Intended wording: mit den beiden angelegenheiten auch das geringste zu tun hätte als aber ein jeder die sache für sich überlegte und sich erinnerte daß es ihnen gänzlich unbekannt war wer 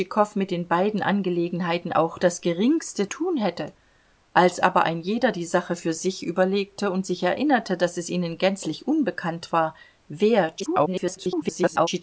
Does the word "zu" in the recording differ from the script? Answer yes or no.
yes